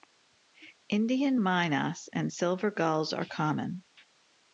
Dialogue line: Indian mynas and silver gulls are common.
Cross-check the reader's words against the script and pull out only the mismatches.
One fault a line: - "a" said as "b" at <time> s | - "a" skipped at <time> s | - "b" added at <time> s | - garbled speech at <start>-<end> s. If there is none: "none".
none